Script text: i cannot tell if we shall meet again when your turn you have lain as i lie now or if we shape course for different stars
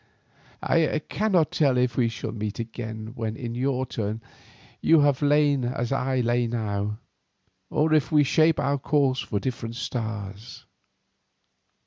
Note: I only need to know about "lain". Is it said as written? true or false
true